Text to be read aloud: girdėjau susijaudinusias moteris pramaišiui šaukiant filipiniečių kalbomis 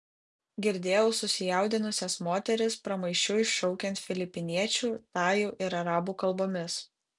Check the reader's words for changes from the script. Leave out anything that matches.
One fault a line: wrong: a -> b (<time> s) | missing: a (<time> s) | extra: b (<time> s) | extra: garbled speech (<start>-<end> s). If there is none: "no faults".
extra: tajų ir arabų (5.2 s)